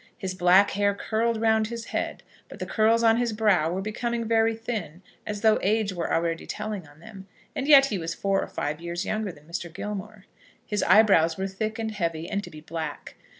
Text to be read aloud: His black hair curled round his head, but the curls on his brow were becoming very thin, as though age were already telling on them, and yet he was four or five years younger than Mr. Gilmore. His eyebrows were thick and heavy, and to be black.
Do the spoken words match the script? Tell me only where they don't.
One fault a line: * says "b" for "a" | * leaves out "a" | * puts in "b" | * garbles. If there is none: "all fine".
all fine